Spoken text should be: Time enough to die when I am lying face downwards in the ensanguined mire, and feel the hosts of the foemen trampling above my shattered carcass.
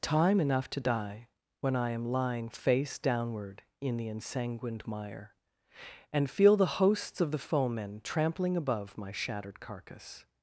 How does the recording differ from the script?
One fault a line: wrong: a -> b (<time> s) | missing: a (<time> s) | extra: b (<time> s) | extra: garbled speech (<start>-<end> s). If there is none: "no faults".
wrong: downwards -> downward (3.0 s)